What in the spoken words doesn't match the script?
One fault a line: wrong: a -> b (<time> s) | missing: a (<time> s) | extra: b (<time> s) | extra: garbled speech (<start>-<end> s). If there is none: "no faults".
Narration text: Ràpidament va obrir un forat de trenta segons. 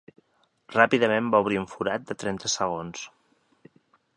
no faults